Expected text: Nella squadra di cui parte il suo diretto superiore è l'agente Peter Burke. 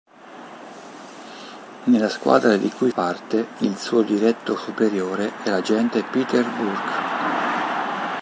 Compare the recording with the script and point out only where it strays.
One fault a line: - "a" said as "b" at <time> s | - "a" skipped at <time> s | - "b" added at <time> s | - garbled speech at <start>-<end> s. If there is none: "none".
none